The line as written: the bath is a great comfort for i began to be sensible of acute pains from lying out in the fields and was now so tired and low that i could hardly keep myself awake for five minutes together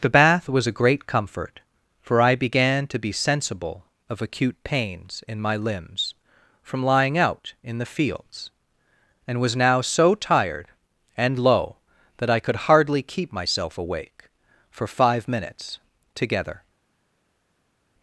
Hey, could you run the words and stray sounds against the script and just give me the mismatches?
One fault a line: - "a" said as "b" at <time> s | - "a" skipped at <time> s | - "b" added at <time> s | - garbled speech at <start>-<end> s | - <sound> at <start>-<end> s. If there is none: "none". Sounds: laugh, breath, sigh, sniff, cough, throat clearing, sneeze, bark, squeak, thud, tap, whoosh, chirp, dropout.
- "is" said as "was" at 0.5 s
- "in my limbs" added at 5.3 s